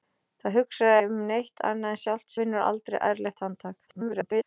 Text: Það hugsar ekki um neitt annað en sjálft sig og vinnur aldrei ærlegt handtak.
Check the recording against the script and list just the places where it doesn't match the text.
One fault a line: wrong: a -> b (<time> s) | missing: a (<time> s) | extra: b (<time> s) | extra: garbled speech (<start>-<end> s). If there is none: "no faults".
missing: ekki (0.9 s)
missing: sig og (2.3 s)
extra: garbled speech (3.9-4.4 s)